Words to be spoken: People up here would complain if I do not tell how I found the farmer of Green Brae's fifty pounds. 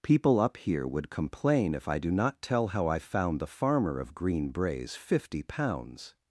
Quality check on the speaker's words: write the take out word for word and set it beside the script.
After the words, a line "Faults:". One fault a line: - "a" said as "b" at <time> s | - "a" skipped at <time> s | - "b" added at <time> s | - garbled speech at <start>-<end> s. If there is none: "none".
People up here would complain if I do not tell how I found the farmer of Green Brae's fifty pounds.
Faults:
none